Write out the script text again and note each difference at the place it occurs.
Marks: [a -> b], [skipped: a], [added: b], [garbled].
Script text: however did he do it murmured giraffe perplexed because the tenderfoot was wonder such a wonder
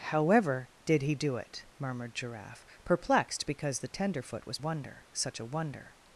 however did he do it murmured giraffe perplexed because the tenderfoot was wonder such a wonder